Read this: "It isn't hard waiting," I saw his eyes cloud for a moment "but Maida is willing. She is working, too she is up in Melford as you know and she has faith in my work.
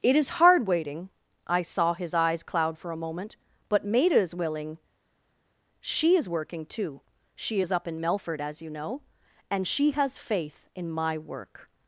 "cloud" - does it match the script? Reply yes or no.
yes